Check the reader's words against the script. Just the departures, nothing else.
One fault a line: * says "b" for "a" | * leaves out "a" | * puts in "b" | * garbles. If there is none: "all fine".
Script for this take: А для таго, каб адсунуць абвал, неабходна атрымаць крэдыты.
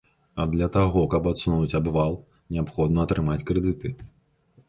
all fine